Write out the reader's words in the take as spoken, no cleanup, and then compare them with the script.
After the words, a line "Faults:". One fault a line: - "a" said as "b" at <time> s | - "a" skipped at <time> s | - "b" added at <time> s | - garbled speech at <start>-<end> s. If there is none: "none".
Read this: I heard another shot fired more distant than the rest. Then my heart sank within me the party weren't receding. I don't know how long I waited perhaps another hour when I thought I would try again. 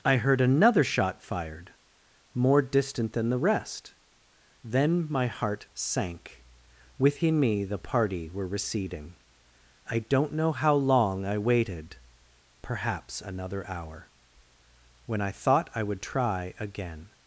I heard another shot fired more distant than the rest. Then my heart sank within me the party were receding. I don't know how long I waited perhaps another hour when I thought I would try again.
Faults:
- "weren't" said as "were" at 8.3 s